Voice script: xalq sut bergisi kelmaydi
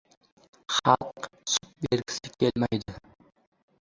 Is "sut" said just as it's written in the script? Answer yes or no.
yes